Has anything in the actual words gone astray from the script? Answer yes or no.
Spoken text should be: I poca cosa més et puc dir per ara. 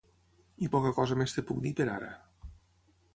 no